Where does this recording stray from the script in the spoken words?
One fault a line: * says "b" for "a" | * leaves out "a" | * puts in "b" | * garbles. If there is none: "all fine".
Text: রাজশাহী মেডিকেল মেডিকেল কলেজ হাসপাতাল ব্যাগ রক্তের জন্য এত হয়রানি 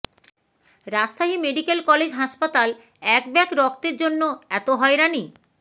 * leaves out "মেডিকেল"
* puts in "এক"